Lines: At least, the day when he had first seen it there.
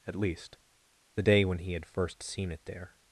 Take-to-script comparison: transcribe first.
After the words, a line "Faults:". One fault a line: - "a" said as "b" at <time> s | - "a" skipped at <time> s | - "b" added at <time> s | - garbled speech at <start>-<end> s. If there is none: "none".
At least, the day when he had first seen it there.
Faults:
none